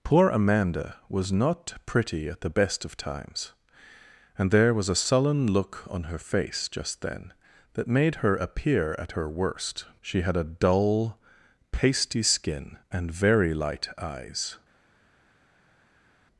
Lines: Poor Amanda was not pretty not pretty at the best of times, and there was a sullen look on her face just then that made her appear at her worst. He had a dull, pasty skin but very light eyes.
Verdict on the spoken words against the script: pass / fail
fail